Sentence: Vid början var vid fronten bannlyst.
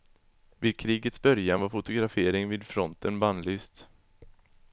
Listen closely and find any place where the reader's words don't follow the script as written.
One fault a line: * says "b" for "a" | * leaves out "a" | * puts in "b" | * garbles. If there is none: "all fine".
* puts in "krigets"
* puts in "fotografering"